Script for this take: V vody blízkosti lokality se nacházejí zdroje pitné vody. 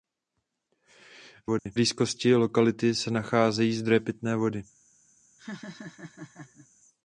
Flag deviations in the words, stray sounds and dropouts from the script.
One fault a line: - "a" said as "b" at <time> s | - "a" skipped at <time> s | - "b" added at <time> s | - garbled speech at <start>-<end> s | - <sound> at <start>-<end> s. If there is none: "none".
- dropout at 1.6-1.7 s
- laugh at 5.4-6.7 s